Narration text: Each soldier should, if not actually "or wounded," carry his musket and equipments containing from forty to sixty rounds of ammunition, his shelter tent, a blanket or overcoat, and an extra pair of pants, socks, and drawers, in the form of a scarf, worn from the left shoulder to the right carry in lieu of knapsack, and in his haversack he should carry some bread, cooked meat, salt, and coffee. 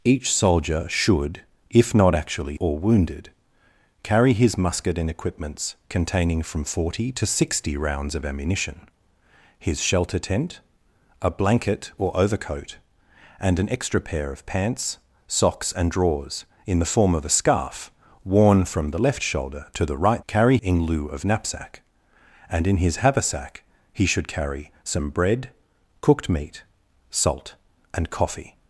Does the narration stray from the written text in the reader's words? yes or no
no